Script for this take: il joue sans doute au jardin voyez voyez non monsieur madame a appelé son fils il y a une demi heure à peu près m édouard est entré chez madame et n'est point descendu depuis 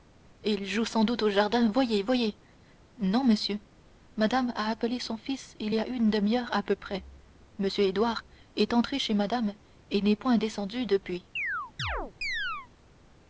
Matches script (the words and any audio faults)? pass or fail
fail